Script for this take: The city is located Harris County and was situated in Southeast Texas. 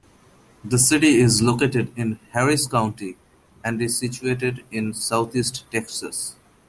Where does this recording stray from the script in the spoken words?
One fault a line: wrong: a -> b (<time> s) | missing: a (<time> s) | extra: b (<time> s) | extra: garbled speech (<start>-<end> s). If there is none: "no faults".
extra: in (1.9 s)
wrong: was -> is (3.8 s)